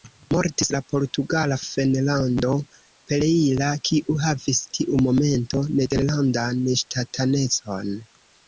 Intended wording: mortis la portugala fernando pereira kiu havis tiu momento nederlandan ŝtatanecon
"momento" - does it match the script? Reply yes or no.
yes